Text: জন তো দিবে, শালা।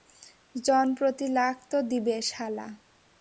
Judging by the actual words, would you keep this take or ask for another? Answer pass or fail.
fail